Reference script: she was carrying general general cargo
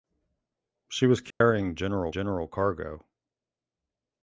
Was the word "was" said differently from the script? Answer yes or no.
no